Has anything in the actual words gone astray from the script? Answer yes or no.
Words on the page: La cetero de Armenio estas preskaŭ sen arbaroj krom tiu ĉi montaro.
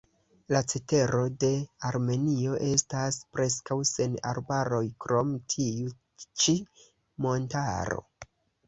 no